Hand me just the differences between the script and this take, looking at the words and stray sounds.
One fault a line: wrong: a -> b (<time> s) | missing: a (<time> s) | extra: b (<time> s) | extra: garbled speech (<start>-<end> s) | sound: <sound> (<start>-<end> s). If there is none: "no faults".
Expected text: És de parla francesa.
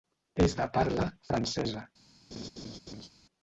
sound: laugh (2.3-3.1 s)